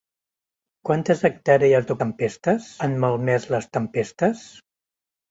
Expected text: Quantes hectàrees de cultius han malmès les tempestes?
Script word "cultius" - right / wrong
wrong